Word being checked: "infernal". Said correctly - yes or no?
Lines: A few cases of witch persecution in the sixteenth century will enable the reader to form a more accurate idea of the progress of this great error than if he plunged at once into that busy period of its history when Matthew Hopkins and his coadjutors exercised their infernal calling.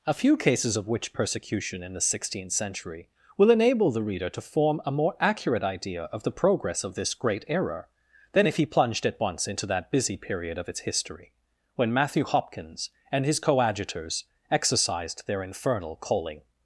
yes